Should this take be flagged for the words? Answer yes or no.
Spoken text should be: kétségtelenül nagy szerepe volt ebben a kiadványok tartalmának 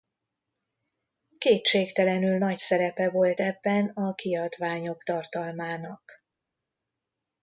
no